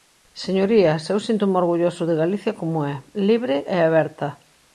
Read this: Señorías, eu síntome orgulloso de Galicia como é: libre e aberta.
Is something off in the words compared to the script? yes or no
no